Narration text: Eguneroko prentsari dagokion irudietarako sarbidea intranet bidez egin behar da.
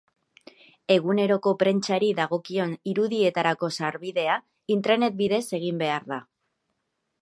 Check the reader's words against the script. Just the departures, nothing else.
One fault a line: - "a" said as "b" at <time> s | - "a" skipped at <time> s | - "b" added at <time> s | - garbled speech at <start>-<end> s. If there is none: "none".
none